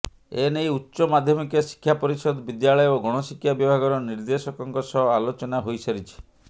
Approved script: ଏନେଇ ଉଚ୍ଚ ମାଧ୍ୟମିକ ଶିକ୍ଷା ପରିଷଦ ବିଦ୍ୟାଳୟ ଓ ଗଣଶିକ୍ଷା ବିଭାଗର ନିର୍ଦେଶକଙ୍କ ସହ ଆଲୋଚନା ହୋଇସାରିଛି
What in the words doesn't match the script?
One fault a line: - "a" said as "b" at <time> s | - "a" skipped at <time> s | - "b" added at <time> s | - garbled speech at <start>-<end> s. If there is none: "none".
none